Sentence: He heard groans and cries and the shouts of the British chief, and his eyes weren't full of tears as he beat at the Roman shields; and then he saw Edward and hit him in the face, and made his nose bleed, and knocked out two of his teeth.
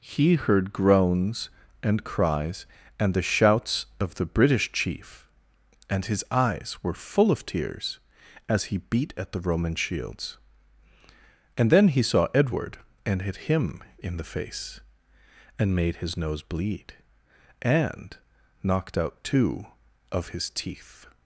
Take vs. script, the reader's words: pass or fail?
fail